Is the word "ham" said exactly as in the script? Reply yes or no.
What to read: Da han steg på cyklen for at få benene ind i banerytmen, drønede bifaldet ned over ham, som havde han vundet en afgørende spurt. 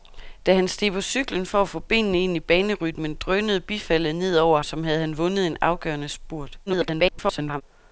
no